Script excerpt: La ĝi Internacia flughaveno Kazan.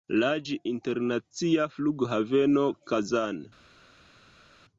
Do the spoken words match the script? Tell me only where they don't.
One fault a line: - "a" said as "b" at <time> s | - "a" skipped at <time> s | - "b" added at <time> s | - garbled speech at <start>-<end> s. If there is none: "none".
none